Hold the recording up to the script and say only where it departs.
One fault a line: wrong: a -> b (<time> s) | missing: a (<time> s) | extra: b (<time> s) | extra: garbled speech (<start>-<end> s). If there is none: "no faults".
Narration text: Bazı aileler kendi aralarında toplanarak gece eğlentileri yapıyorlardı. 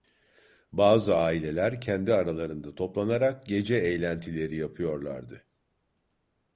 no faults